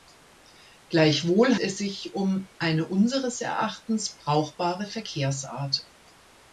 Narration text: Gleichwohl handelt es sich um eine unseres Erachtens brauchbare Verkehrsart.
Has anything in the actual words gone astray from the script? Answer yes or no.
yes